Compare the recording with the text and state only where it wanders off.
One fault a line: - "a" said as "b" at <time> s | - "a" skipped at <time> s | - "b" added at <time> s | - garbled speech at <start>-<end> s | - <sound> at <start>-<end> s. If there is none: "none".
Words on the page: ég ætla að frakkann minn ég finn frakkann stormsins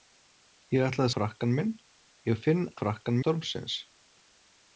none